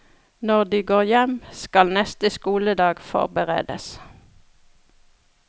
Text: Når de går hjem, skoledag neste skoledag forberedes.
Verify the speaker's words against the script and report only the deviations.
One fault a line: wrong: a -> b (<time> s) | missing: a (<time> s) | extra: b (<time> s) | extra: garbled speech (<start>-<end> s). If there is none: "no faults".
wrong: skoledag -> skal (1.5 s)